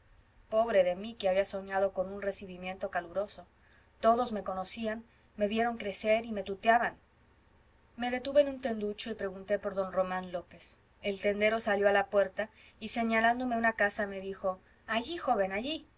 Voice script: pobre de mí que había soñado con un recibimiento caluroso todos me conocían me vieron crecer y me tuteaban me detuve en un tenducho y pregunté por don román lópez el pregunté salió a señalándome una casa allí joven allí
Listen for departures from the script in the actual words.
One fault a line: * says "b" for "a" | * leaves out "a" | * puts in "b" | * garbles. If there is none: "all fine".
* says "tendero" for "pregunté"
* puts in "la puerta y"
* puts in "me dijo"